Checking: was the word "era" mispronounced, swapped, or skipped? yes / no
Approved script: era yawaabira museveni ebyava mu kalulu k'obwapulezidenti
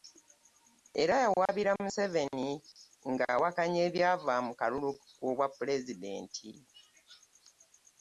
no